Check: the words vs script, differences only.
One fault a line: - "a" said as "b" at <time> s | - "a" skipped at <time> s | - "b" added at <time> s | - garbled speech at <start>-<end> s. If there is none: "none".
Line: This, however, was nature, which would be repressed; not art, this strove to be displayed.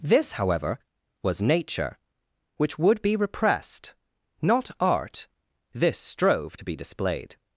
none